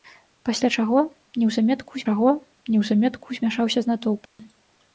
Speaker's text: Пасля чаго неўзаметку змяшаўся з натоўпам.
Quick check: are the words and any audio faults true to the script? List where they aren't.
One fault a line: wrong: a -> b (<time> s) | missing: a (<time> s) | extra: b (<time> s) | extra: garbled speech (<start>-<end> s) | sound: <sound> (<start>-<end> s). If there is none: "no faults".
extra: чаго неўзаметку (2.1 s)
sound: dropout (4.3-4.4 s)